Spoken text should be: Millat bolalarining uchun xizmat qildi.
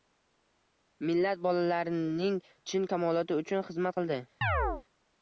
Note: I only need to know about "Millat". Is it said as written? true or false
true